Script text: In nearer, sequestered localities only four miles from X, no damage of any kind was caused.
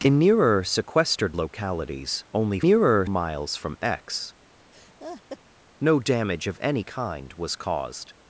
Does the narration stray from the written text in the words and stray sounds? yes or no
yes